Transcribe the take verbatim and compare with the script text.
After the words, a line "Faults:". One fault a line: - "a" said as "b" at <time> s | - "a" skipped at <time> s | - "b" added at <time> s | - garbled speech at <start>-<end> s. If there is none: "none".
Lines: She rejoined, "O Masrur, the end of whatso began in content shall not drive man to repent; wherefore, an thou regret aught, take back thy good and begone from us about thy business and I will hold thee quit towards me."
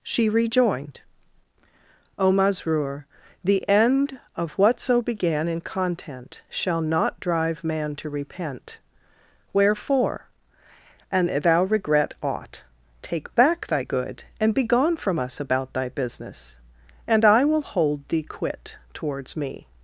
She rejoined, "O Masrur, the end of whatso began in content shall not drive man to repent; wherefore, an thou regret aught, take back thy good and begone from us about thy business and I will hold thee quit towards me."
Faults:
none